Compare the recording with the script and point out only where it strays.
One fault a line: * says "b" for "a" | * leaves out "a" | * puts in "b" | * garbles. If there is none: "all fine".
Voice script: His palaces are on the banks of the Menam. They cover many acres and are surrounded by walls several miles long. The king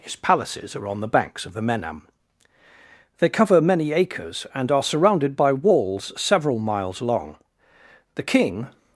all fine